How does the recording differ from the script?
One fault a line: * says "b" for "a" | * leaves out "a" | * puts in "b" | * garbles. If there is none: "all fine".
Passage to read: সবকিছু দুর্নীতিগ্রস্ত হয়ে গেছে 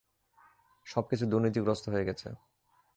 all fine